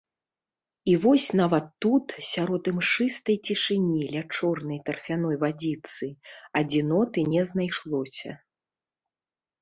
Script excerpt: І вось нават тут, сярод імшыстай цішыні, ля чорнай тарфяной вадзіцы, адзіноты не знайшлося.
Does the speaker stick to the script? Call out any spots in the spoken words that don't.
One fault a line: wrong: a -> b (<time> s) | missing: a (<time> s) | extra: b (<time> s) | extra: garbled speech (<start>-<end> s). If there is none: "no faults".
no faults